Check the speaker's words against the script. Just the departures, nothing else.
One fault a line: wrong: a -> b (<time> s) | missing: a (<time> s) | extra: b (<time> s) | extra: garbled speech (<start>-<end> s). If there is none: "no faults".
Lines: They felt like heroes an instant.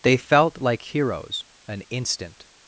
no faults